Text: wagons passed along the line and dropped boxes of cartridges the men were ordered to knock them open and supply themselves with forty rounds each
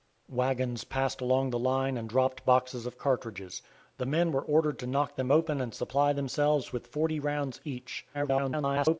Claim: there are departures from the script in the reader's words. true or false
true